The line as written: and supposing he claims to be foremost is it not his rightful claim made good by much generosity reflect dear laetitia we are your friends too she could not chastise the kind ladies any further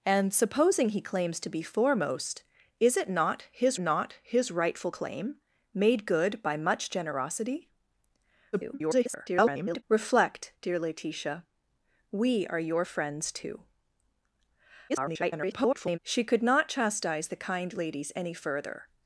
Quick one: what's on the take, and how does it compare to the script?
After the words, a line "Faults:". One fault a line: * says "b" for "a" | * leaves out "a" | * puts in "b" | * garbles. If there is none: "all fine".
and supposing he claims to be foremost is it not his not his rightful claim made good by much generosity [garbled] reflect dear laetitia we are your friends too [garbled] she could not chastise the kind ladies any further
Faults:
* puts in "not his"
* garbles
* garbles